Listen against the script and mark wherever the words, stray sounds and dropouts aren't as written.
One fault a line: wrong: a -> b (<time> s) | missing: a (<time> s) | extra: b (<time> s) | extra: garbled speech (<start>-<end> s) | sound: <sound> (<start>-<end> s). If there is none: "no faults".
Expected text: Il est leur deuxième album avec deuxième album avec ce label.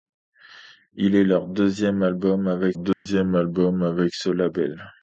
sound: dropout (2.9-3.1 s)